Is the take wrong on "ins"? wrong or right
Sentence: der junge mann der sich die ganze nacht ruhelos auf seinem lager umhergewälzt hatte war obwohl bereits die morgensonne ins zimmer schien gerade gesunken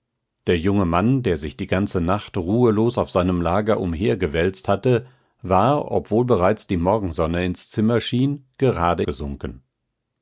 right